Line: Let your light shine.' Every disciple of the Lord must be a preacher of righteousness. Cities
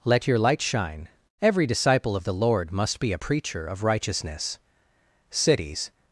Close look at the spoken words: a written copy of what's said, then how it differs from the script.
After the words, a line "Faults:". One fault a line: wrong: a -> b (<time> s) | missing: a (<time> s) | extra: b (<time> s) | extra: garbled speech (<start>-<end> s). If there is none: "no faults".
Let your light shine.' Every disciple of the Lord must be a preacher of righteousness. Cities
Faults:
no faults